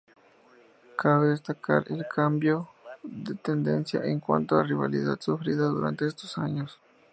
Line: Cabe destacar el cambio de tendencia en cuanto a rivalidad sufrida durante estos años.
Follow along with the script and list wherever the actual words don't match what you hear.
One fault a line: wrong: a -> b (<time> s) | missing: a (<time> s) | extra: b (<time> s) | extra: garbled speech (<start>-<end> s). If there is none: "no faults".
no faults